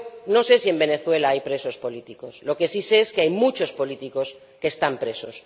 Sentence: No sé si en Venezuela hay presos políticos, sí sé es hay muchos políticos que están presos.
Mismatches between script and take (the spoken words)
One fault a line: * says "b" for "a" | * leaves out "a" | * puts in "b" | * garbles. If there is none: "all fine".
* puts in "lo que"
* puts in "que"